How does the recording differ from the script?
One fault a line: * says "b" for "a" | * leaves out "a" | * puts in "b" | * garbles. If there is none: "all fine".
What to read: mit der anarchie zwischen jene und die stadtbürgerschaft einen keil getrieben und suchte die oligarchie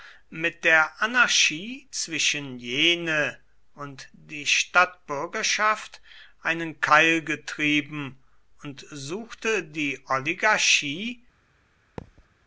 all fine